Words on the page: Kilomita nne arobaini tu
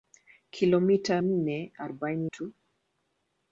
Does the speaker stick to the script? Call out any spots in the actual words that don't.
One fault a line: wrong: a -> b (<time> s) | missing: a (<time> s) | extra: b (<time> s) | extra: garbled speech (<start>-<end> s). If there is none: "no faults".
no faults